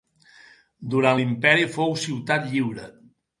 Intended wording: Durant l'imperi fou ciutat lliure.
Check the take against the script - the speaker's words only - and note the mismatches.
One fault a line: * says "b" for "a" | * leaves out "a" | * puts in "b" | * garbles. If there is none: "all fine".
all fine